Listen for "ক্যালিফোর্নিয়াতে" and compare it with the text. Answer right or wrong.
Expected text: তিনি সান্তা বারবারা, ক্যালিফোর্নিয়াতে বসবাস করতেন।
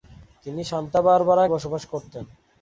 wrong